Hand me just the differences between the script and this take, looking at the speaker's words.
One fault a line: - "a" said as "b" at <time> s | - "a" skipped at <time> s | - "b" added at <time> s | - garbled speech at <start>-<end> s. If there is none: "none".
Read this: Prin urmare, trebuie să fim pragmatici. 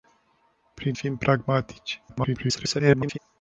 - "urmare trebuie să" skipped at 1.0 s
- garbled speech at 2.1-3.2 s